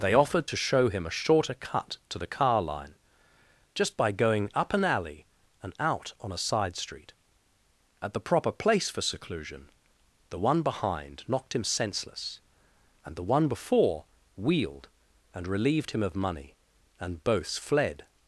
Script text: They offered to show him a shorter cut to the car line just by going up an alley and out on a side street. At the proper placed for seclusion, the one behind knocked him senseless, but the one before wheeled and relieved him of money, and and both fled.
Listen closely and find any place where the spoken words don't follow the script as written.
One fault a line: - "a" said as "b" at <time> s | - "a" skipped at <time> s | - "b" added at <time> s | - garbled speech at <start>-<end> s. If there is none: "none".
- "placed" said as "place" at 8.5 s
- "but" said as "and" at 13.0 s
- "and" skipped at 17.2 s